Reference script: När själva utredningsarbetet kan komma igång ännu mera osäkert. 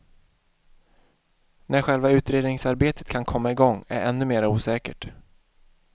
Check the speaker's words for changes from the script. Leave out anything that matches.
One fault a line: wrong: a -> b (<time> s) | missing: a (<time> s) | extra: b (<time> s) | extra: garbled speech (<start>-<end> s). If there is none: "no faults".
extra: är (3.9 s)